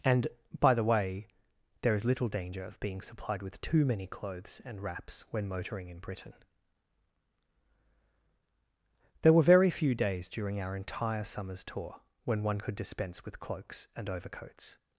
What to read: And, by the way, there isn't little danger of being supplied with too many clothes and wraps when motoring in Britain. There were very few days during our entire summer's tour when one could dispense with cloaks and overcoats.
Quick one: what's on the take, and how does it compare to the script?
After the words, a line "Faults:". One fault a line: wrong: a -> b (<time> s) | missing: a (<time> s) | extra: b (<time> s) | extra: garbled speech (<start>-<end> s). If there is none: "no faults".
And, by the way, there is little danger of being supplied with too many clothes and wraps when motoring in Britain. There were very few days during our entire summer's tour when one could dispense with cloaks and overcoats.
Faults:
wrong: isn't -> is (1.9 s)